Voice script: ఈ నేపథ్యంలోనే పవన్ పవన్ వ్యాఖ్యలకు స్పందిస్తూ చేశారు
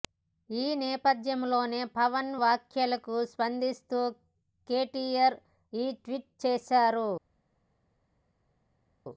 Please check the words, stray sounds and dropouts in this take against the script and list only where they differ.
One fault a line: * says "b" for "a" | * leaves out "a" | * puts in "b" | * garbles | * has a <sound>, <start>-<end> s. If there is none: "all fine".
* leaves out "పవన్"
* puts in "కేటీఆర్ ఈ ట్వీట్"